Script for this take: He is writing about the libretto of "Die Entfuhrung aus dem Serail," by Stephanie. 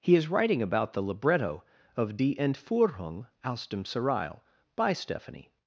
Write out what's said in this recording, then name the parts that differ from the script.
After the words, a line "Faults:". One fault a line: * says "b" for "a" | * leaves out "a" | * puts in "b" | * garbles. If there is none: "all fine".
He is writing about the libretto of "Die Entfuhrung aus dem Serail," by Stephanie.
Faults:
all fine